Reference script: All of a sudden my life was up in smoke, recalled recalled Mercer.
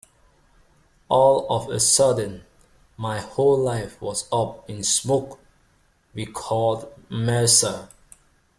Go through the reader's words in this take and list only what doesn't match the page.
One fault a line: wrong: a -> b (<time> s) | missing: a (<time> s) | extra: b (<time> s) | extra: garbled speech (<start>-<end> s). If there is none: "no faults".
extra: whole (3.2 s)
missing: recalled (6.9 s)